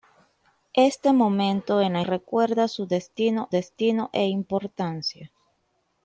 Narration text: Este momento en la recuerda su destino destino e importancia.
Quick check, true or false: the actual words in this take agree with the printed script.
true